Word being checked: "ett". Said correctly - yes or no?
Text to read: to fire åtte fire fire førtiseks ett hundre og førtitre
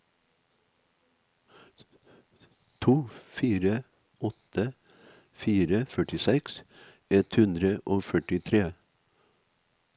yes